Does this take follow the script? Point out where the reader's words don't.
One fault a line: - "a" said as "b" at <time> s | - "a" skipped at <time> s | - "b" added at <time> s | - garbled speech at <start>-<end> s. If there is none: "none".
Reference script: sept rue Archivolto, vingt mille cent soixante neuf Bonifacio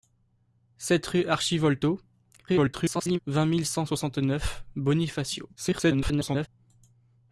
- garbled speech at 2.5-3.2 s
- garbled speech at 5.6-6.5 s